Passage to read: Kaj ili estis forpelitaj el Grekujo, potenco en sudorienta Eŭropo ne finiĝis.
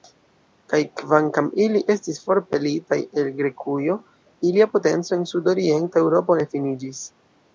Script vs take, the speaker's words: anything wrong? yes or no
yes